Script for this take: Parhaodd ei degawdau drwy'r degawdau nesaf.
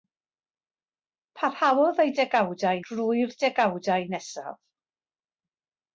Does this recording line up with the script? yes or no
yes